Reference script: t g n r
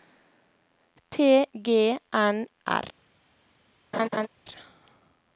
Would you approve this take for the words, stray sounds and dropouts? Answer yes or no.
no